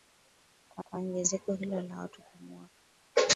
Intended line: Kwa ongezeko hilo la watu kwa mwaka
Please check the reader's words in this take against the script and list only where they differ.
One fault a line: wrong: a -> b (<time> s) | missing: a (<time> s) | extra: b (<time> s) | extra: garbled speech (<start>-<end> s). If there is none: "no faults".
extra: kwa (0.8 s)